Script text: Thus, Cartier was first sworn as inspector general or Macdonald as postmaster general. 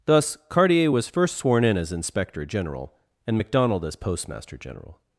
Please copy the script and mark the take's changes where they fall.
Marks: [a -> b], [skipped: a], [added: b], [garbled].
Thus, Cartier was first sworn [added: in] as inspector general [or -> and] Macdonald as postmaster general.